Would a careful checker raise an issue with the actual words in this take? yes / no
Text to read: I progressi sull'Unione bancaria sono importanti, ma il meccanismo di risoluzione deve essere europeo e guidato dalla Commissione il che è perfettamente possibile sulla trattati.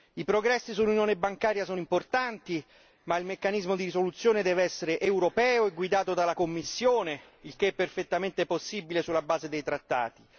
yes